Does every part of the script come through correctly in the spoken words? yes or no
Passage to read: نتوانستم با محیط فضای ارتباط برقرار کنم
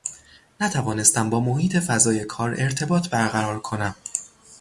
no